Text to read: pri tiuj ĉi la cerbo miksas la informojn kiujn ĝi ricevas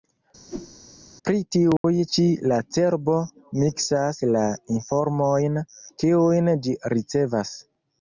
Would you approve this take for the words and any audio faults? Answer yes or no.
no